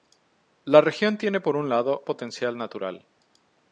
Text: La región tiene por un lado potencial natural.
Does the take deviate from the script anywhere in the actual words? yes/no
no